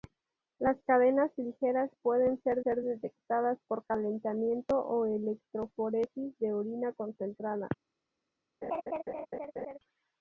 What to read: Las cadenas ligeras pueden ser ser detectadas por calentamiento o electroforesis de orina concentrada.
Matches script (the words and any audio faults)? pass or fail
fail